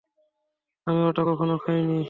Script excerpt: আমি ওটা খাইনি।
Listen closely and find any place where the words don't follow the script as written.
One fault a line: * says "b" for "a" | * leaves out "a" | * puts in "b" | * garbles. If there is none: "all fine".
* puts in "কখনো"